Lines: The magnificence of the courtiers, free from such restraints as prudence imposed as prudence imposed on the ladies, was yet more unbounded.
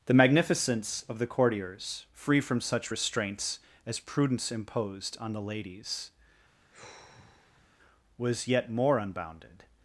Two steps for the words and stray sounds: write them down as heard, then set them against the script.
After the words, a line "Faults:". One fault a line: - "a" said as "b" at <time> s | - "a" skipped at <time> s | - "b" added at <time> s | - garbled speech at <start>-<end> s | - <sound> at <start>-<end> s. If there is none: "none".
The magnificence of the courtiers, free from such restraints as prudence imposed on the ladies, was yet more unbounded.
Faults:
- "as prudence imposed" skipped at 5.2 s
- sigh at 6.6-7.7 s